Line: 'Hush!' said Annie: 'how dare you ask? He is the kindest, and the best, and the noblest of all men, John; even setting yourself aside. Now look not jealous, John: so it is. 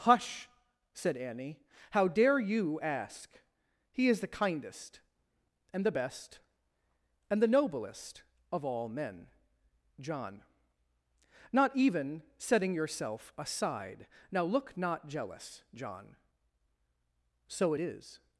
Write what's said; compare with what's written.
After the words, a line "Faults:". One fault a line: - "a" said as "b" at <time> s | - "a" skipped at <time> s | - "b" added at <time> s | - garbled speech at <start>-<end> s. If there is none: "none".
'Hush!' said Annie: 'how dare you ask? He is the kindest, and the best, and the noblest of all men, John; not even setting yourself aside. Now look not jealous, John: so it is.
Faults:
- "not" added at 11.5 s